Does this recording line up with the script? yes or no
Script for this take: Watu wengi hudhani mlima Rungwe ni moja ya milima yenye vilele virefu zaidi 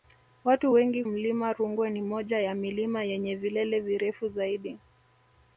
no